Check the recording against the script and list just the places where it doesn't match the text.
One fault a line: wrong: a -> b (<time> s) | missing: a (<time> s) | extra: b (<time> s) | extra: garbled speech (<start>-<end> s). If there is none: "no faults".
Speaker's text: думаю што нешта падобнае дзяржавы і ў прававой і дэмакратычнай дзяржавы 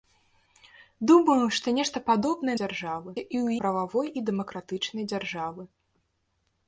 no faults